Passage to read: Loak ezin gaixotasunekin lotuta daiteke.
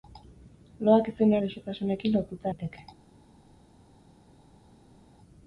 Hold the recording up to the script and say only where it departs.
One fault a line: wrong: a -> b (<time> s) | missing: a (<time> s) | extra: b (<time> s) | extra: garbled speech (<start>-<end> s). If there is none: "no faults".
no faults